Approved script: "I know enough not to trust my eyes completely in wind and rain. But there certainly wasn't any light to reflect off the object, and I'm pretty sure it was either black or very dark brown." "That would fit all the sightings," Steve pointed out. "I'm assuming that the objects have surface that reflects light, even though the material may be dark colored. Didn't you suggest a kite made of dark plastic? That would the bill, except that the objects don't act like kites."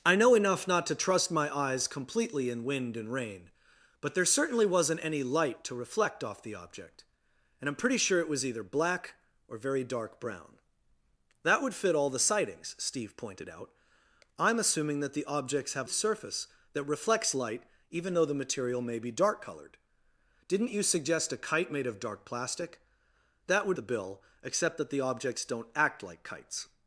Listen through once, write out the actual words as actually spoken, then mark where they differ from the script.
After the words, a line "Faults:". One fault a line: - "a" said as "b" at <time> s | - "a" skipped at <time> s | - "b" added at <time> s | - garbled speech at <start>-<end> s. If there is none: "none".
"I know enough not to trust my eyes completely in wind and rain. But there certainly wasn't any light to reflect off the object, and I'm pretty sure it was either black or very dark brown." "That would fit all the sightings," Steve pointed out. "I'm assuming that the objects have surface that reflects light, even though the material may be dark colored. Didn't you suggest a kite made of dark plastic? That would the bill, except that the objects don't act like kites."
Faults:
none